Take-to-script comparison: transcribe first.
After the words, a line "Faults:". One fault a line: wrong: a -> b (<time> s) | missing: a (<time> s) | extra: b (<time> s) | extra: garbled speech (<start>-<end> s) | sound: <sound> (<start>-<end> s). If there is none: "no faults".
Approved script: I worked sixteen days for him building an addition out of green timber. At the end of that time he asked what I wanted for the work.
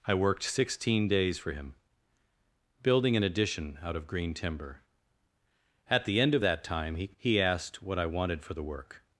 I worked sixteen days for him building an addition out of green timber. At the end of that time he he asked what I wanted for the work.
Faults:
extra: he (7.2 s)